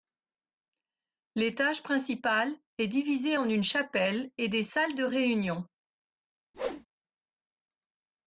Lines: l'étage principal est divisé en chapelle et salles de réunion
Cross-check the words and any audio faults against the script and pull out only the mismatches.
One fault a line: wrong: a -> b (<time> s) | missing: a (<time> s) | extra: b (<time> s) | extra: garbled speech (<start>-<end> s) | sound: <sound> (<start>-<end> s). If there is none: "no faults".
extra: une (3.5 s)
extra: des (4.5 s)
sound: whoosh (6.5-6.9 s)